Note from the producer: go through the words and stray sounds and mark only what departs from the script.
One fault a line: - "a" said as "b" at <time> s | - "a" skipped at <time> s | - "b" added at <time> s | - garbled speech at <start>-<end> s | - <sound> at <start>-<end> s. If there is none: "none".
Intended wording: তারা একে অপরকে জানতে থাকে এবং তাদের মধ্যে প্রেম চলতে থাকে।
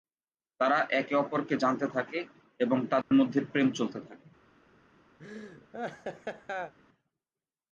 - dropout at 3.0-3.1 s
- laugh at 5.2-6.7 s